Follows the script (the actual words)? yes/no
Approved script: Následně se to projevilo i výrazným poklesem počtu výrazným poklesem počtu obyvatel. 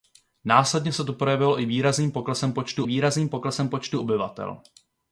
yes